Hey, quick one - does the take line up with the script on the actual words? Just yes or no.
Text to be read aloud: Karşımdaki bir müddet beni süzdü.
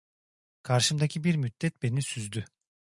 yes